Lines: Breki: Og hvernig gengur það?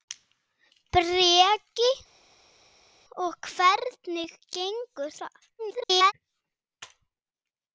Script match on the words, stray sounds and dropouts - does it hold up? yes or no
no